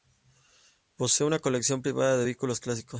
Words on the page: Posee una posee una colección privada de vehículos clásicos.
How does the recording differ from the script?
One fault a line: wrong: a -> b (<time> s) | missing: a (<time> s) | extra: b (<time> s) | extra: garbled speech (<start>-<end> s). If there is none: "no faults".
missing: posee una (1.4 s)